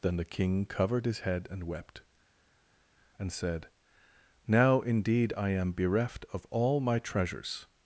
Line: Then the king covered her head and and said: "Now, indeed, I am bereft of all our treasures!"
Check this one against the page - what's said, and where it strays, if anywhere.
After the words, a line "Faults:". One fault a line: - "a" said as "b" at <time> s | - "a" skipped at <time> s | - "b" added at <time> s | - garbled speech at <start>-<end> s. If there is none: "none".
Then the king covered his head and wept, and said: "Now, indeed, I am bereft of all my treasures!"
Faults:
- "her" said as "his" at 1.1 s
- "wept" added at 1.6 s
- "our" said as "my" at 6.8 s